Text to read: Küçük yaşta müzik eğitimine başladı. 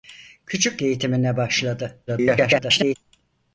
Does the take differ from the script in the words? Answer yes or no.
yes